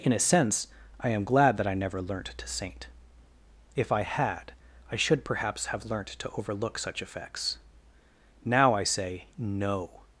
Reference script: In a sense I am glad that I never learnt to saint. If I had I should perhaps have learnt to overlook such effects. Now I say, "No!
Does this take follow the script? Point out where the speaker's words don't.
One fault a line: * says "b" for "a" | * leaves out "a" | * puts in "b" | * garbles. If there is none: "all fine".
all fine